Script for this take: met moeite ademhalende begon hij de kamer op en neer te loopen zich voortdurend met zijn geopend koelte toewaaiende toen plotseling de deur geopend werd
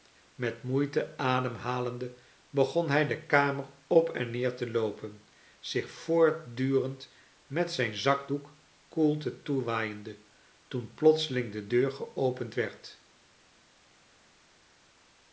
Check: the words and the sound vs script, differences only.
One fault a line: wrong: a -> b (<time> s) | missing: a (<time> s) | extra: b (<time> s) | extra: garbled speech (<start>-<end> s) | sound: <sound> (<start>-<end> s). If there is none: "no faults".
wrong: geopend -> zakdoek (8.0 s)